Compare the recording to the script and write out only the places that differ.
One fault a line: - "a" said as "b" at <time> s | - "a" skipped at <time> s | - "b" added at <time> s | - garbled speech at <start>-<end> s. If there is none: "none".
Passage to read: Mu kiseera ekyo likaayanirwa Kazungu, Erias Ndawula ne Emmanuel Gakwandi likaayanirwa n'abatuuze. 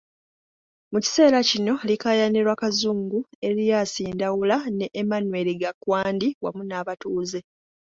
- "ekyo" said as "kino" at 1.5 s
- "likaayanirwa" said as "wamu" at 6.4 s